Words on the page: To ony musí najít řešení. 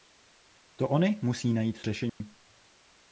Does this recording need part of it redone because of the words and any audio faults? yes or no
yes